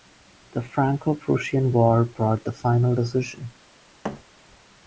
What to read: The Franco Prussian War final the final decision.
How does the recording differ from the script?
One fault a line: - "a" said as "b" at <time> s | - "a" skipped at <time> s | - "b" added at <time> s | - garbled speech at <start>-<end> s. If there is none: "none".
- "final" said as "brought" at 2.0 s